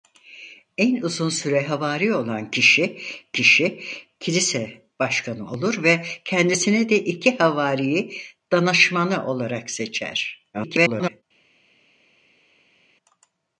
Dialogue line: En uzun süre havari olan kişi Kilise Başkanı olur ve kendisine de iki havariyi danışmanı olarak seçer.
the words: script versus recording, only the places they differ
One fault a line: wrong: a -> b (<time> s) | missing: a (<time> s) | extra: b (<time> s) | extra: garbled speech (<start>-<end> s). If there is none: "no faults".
extra: kişi (3.3 s)
extra: garbled speech (10.5-11.2 s)